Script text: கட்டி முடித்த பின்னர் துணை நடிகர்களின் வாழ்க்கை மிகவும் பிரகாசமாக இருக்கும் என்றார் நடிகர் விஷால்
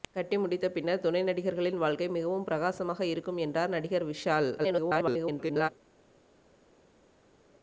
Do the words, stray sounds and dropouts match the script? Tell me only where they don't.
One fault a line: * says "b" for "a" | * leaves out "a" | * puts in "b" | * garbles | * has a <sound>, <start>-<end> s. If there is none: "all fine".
* garbles